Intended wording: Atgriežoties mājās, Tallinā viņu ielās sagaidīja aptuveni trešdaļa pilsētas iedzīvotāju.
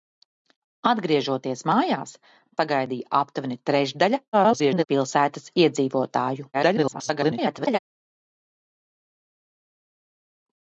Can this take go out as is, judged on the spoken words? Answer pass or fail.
fail